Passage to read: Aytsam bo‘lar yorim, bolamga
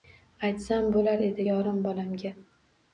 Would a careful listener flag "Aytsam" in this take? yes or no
no